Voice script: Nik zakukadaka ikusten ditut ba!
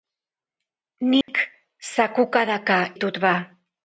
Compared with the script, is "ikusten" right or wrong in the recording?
wrong